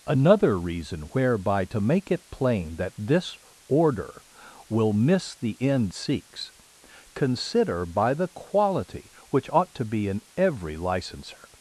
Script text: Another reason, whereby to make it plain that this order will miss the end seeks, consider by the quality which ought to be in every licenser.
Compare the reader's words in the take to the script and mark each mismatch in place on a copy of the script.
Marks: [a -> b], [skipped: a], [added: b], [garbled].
Another reason, whereby to make it plain that this order will miss the end seeks, consider by the quality which ought to be in every licenser.